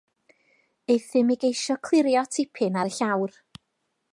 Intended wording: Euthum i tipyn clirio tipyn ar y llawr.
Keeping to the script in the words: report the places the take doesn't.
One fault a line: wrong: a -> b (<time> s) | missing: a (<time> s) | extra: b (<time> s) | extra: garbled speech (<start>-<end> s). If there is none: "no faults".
wrong: tipyn -> geisio (1.4 s)